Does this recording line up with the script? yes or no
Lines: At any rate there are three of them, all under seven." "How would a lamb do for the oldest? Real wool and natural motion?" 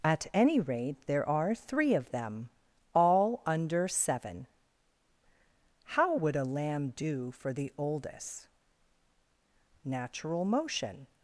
no